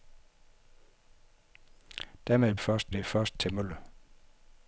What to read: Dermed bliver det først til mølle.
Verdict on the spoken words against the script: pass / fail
fail